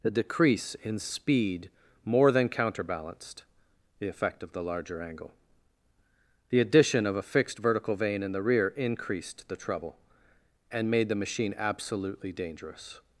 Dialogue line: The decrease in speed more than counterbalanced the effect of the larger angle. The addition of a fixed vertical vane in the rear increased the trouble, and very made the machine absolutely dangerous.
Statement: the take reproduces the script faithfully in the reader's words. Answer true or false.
false